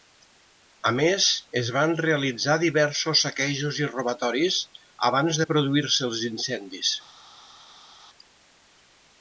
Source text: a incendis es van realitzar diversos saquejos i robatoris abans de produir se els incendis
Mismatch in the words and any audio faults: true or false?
true